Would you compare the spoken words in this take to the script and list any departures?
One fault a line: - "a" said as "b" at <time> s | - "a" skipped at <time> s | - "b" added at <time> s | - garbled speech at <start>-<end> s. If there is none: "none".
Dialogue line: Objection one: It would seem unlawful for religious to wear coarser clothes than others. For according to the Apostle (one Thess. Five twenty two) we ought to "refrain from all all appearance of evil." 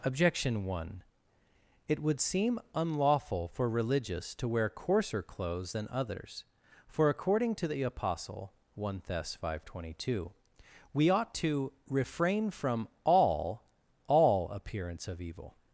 none